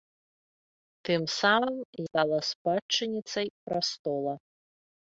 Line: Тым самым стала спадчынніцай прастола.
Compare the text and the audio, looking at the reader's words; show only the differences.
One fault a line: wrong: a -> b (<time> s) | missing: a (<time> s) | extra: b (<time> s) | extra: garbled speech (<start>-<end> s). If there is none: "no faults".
no faults